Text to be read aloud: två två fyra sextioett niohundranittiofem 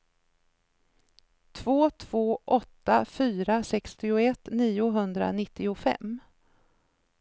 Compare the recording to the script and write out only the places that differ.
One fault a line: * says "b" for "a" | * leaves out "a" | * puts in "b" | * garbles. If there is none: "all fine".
* puts in "åtta"